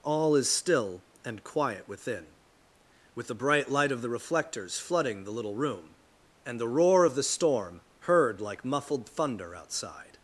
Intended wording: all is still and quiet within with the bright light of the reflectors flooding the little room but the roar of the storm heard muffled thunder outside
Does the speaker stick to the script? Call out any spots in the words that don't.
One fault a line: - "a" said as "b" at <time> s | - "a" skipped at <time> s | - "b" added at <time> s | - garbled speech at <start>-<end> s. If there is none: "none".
- "but" said as "and" at 6.5 s
- "like" added at 8.4 s